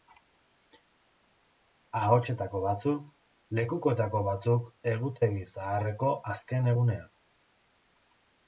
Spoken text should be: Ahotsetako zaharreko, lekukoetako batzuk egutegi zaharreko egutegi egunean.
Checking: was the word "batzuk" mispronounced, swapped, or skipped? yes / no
no